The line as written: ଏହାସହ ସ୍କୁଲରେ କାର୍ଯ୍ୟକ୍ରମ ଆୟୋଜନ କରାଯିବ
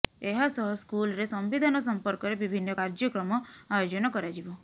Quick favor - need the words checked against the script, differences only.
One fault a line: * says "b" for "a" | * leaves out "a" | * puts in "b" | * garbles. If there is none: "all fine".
* puts in "ସମ୍ବିଧାନ ସମ୍ପର୍କରେ ବିଭିନ୍ନ"